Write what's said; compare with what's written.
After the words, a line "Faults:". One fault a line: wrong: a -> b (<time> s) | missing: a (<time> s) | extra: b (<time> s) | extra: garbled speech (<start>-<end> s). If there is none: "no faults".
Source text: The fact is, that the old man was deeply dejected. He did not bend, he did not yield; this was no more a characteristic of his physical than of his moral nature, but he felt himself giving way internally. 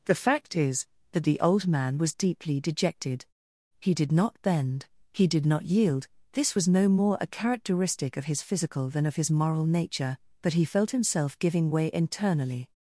The fact is, that the old man was deeply dejected. He did not bend, he did not yield; this was no more a characteristic of his physical than of his moral nature, but he felt himself giving way internally.
Faults:
no faults